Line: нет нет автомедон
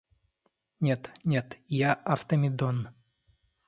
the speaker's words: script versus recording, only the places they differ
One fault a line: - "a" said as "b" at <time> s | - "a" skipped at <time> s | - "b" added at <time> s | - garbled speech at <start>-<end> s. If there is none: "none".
- "я" added at 1.7 s